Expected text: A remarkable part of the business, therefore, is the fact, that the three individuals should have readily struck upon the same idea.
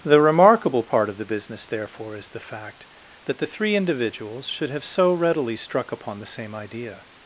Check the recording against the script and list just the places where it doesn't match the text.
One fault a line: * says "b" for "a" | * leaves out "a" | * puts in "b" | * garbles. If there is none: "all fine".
* says "The" for "A"
* puts in "so"